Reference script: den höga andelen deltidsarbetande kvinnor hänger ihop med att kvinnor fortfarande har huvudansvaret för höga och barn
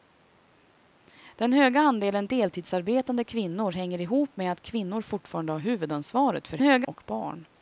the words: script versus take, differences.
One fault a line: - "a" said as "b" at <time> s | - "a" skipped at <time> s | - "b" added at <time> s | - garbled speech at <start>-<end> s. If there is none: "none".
none